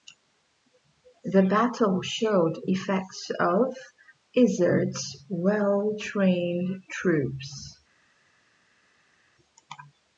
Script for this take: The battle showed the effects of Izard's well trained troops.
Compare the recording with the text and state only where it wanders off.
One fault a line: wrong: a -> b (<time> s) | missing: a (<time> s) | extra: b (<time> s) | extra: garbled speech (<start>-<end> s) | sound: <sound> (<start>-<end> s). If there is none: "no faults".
missing: the (2.6 s)